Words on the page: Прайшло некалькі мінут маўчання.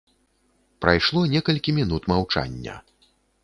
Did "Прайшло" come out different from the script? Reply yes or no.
no